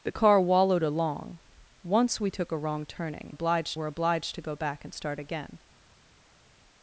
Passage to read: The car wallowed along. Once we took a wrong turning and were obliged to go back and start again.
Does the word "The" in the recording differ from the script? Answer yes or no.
no